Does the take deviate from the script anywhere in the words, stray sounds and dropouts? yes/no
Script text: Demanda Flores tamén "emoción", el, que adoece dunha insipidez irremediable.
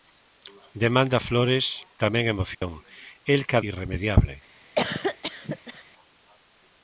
yes